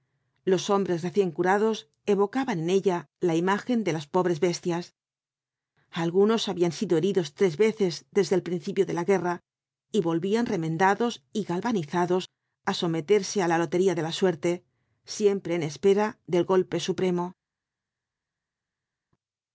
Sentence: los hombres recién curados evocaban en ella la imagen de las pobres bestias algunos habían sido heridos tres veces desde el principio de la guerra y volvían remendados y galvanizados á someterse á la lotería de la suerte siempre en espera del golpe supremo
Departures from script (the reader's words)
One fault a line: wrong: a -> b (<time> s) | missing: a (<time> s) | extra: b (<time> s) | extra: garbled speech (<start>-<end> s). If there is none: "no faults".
no faults